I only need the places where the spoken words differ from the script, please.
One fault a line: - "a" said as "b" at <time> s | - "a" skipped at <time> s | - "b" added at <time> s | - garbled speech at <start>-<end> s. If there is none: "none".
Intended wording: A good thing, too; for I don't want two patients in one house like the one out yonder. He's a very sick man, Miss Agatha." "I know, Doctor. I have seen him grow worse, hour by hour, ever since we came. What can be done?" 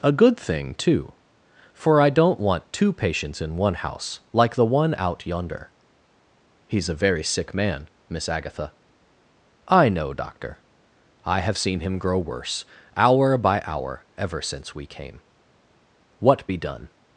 - "can" skipped at 16.5 s